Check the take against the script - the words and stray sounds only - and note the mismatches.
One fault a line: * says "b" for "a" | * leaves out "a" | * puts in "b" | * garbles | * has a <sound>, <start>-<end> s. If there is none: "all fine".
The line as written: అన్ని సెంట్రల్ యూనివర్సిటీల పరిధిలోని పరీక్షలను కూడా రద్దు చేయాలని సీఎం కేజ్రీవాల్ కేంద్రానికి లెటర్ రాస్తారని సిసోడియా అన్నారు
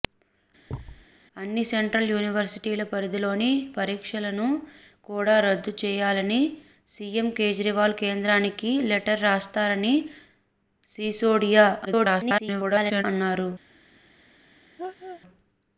* has a thud, 0.7-1.1 s
* garbles
* has a laugh, 14.8-15.2 s